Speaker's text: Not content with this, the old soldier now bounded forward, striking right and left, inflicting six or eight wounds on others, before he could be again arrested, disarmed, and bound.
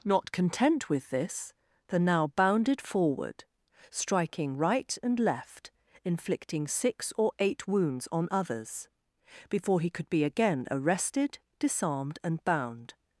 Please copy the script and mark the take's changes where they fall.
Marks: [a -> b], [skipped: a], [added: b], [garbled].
Not content with this, the [skipped: old soldier] now bounded forward, striking right and left, inflicting six or eight wounds on others, before he could be again arrested, disarmed, and bound.